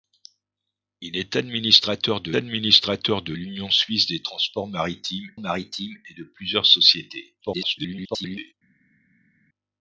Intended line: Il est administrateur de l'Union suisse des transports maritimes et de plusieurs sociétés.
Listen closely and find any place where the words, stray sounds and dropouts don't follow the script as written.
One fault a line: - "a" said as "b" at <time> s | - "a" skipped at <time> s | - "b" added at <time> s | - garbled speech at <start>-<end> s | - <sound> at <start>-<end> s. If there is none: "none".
- "administrateur de" added at 2.3 s
- "maritimes" added at 5.4 s
- garbled speech at 7.4-8.5 s